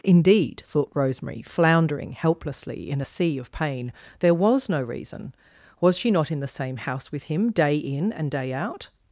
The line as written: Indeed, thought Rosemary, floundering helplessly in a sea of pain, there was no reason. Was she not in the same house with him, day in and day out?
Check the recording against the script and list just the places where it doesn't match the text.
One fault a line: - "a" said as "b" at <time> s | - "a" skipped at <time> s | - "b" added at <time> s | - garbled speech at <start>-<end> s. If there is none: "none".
none